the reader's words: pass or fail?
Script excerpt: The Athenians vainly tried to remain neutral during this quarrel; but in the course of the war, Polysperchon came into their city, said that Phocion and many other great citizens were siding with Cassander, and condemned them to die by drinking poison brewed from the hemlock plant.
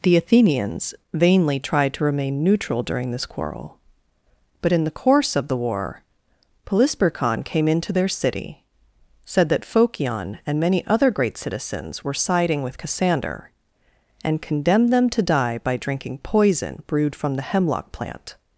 pass